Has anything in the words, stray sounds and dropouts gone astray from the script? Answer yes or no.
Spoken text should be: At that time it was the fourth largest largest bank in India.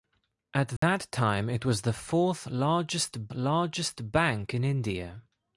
yes